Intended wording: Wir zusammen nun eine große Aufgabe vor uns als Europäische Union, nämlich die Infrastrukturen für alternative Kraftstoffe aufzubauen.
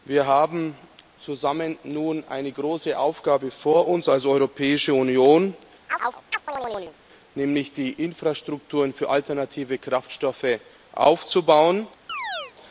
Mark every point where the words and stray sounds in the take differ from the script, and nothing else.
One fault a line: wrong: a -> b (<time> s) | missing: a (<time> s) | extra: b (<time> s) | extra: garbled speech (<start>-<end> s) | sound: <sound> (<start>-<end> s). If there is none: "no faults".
extra: haben (0.2 s)
sound: chirp (5.9-7.0 s)
sound: chirp (12.1-12.5 s)